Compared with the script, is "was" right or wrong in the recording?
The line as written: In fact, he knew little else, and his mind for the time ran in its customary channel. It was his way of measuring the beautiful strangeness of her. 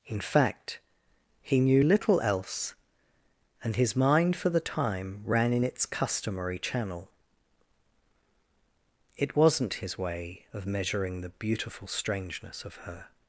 wrong